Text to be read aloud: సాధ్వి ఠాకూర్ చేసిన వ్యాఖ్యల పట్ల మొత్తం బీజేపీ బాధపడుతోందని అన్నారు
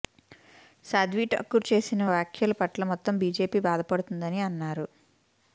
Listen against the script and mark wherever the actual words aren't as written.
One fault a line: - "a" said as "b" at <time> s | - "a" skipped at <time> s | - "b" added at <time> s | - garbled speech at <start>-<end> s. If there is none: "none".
none